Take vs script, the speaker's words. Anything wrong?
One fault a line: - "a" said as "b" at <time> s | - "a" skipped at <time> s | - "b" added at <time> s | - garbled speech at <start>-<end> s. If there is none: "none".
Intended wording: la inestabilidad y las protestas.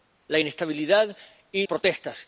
- "las" skipped at 1.7 s